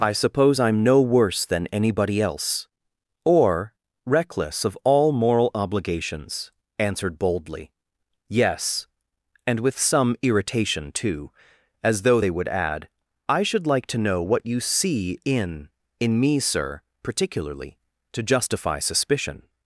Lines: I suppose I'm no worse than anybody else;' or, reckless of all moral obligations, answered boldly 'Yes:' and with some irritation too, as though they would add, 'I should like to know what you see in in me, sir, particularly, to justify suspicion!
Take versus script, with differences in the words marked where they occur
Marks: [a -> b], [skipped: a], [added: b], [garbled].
I suppose I'm no worse than anybody else;' or, reckless of all moral obligations, answered boldly 'Yes:' and with some irritation too, as though they would add, 'I should like to know what you see in in me, sir, particularly, to justify suspicion!